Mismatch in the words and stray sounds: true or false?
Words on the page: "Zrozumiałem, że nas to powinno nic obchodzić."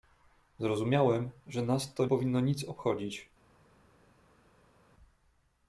false